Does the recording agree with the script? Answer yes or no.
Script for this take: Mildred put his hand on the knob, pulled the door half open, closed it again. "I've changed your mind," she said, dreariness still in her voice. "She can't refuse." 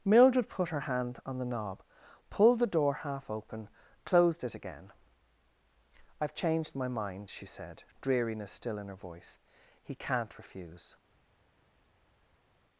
no